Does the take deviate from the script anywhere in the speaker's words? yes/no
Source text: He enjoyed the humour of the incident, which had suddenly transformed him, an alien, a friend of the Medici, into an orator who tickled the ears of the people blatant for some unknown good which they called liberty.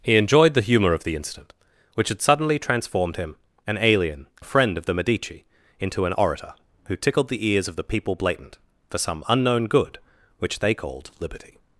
no